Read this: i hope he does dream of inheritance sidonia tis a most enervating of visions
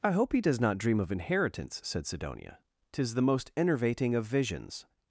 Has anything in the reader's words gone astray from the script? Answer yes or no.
yes